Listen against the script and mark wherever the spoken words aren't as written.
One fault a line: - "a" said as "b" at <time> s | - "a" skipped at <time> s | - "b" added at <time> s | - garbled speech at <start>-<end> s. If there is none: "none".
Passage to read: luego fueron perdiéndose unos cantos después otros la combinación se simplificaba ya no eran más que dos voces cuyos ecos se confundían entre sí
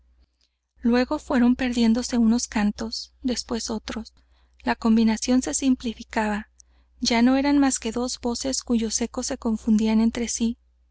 none